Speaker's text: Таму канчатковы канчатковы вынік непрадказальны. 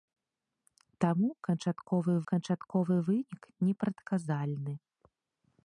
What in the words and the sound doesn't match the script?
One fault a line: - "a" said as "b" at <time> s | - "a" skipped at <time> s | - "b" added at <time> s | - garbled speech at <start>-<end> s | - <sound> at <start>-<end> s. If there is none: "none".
none